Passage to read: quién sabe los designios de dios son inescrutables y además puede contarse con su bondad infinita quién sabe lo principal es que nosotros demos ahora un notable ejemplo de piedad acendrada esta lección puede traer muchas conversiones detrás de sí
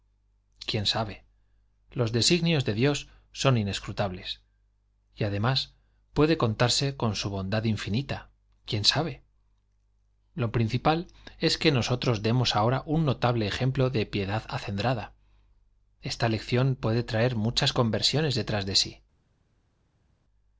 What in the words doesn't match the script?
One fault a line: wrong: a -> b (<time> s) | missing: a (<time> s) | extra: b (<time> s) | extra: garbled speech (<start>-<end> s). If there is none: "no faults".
no faults